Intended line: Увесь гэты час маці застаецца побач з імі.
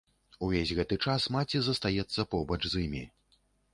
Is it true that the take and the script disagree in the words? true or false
false